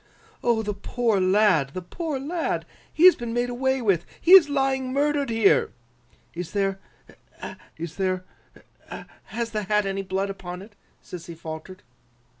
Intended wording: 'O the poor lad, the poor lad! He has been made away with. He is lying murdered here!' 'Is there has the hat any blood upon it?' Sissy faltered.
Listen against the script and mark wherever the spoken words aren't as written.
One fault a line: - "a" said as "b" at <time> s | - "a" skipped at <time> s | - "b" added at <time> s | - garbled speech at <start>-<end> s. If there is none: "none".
- "is there" added at 7.8 s